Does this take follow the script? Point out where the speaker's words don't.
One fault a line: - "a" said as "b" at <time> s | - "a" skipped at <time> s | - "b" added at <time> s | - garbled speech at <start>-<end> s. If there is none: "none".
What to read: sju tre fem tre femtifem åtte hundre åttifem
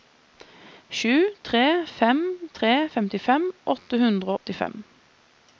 none